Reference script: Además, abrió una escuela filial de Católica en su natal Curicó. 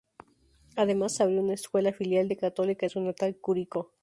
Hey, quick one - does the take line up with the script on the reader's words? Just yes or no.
yes